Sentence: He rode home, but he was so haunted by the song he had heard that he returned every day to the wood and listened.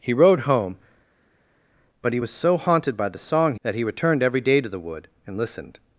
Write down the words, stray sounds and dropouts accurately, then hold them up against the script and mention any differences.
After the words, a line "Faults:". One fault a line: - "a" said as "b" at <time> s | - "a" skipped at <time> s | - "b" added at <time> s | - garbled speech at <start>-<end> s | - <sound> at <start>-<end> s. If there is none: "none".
He rode home, but he was so haunted by the song that he returned every day to the wood and listened.
Faults:
- "he had heard" skipped at 3.5 s